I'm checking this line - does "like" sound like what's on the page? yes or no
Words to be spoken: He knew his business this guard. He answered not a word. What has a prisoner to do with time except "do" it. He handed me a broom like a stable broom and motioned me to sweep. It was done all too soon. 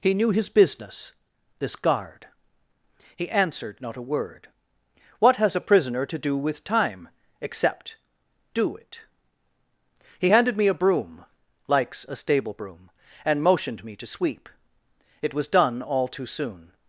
no